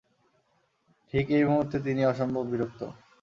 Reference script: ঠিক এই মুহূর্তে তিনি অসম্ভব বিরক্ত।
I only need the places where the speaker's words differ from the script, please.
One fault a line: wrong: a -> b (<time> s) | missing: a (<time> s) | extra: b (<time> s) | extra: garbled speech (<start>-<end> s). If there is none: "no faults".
no faults